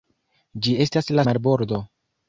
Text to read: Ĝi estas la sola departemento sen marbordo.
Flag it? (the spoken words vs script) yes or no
yes